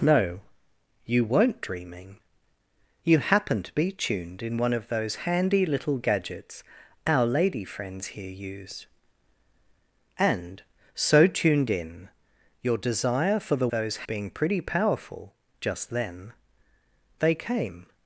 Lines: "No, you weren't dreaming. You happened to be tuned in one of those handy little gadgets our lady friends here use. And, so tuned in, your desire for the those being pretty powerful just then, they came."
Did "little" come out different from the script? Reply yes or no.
no